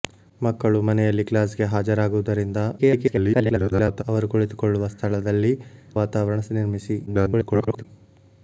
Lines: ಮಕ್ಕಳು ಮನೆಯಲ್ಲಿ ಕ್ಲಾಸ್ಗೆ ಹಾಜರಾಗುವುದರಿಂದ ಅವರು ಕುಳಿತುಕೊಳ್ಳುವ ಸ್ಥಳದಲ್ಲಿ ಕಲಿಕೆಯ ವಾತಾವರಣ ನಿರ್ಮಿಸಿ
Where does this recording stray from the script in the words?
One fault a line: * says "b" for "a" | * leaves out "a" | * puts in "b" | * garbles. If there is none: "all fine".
* garbles
* leaves out "ಕಲಿಕೆಯ"
* garbles